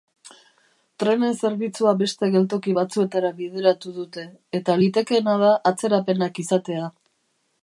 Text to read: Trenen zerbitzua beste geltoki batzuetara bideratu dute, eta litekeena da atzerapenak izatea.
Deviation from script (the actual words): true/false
false